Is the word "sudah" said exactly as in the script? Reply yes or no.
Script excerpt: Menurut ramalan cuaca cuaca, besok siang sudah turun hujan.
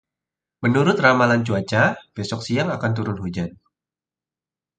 no